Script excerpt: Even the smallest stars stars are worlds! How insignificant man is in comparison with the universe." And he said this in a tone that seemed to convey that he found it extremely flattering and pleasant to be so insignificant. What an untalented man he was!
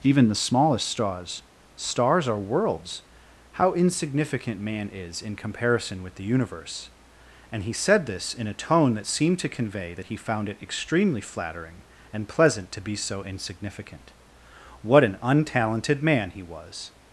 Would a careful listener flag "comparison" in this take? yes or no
no